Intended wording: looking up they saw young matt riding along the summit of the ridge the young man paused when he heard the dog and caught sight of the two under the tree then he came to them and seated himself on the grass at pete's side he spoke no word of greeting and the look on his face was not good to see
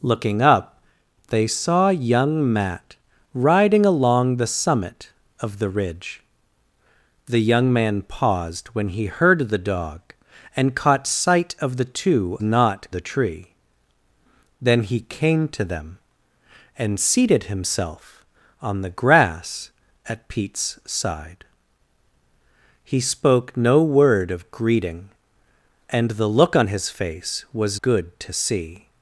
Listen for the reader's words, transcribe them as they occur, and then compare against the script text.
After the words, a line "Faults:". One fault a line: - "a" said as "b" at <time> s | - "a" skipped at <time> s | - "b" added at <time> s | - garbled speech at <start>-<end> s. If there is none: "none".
looking up they saw young matt riding along the summit of the ridge the young man paused when he heard the dog and caught sight of the two not the tree then he came to them and seated himself on the grass at pete's side he spoke no word of greeting and the look on his face was good to see
Faults:
- "under" said as "not" at 12.4 s
- "not" skipped at 27.8 s